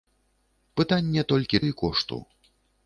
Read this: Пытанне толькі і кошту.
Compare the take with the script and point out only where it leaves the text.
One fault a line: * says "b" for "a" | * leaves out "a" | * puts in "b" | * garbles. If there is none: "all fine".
all fine